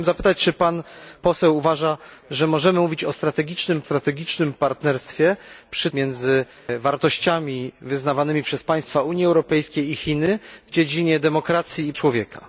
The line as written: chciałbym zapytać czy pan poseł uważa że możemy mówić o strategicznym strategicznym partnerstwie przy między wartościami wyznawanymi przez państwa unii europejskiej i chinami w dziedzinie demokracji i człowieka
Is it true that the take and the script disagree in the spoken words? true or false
false